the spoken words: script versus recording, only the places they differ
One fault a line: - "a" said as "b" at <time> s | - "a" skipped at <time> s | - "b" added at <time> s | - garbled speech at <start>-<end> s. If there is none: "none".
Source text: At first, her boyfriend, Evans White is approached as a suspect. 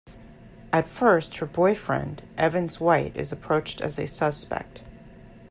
none